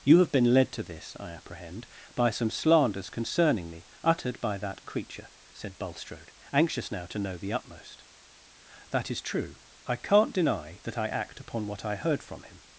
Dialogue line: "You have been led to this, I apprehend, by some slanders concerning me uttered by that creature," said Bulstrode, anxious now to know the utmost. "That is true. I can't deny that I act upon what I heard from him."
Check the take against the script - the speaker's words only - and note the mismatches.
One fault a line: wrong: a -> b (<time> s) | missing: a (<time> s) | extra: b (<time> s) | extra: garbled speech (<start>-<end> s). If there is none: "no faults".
no faults